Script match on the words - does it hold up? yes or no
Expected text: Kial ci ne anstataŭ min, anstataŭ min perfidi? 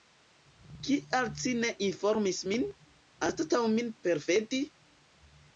no